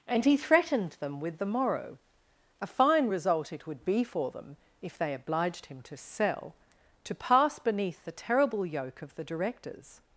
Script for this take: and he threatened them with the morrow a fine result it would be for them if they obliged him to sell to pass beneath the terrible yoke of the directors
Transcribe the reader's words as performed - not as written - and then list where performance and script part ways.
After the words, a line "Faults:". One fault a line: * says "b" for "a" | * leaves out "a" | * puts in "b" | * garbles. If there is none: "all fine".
and he threatened them with the morrow a fine result it would be for them if they obliged him to sell to pass beneath the terrible yoke of the directors
Faults:
all fine